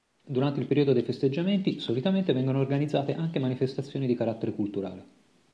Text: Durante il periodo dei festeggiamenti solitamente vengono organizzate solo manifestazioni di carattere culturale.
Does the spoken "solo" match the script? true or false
false